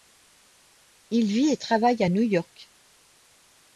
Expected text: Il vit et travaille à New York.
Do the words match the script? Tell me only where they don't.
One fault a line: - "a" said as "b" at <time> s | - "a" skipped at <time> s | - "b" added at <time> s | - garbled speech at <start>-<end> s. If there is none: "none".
none